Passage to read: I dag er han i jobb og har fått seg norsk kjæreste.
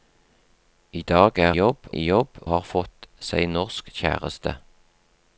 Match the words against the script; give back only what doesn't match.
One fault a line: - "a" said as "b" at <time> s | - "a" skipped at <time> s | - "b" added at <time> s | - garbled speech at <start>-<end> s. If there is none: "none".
- "han" said as "jobb" at 1.5 s
- "og" skipped at 2.4 s